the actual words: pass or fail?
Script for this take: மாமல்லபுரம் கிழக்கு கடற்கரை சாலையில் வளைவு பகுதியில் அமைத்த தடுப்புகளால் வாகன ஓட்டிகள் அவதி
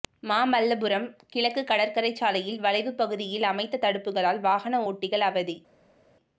pass